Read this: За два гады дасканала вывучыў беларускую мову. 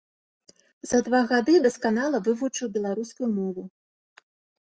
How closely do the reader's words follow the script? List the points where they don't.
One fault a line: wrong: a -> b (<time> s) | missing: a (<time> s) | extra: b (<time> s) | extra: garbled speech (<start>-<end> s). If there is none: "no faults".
no faults